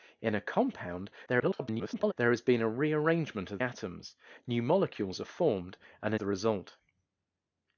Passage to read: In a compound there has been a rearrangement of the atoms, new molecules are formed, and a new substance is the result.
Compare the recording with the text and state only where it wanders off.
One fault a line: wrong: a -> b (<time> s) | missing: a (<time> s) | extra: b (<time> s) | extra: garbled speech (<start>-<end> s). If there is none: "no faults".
extra: garbled speech (1.3-2.1 s)
missing: the (3.6 s)
missing: new substance is (6.2 s)